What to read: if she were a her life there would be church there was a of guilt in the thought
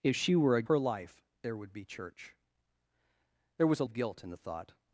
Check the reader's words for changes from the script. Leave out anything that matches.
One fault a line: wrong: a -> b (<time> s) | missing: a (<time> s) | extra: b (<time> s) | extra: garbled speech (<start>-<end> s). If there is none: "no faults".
no faults